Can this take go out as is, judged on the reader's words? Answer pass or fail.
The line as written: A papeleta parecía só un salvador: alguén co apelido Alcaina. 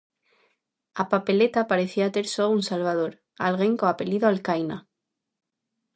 fail